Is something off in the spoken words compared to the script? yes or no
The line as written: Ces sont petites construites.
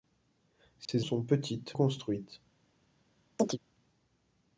no